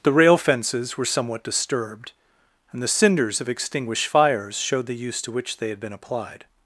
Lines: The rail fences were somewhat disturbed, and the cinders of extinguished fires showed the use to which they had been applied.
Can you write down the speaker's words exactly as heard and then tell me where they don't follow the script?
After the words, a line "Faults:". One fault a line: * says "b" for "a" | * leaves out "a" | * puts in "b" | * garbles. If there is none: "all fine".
The rail fences were somewhat disturbed, and the cinders of extinguished fires showed the use to which they had been applied.
Faults:
all fine